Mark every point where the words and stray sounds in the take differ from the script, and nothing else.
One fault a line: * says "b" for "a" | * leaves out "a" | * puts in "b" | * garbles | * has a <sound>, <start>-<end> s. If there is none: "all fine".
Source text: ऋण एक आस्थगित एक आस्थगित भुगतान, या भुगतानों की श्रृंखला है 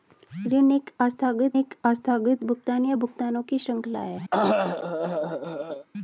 * has a cough, 4.3-5.9 s